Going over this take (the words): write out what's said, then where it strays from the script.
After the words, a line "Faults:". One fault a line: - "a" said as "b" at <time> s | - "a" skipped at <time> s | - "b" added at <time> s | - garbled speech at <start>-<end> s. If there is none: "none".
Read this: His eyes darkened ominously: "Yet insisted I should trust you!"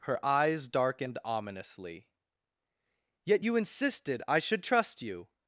Her eyes darkened ominously: "Yet you insisted I should trust you!"
Faults:
- "His" said as "Her" at 0.1 s
- "you" added at 3.4 s